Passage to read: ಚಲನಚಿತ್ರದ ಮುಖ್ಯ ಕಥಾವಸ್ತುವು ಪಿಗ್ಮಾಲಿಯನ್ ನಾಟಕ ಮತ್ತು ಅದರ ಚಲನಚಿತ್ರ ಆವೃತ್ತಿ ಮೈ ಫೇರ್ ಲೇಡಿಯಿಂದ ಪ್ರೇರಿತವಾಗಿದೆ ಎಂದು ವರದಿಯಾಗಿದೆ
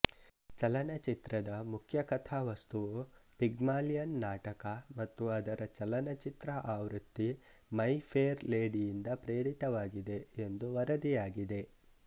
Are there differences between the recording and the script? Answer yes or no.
no